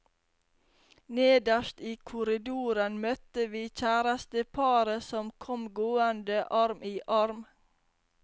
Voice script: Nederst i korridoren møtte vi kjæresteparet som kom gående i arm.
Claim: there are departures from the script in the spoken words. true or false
true